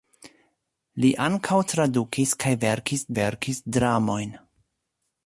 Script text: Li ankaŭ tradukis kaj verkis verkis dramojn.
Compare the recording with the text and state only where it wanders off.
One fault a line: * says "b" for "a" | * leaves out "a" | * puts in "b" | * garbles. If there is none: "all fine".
all fine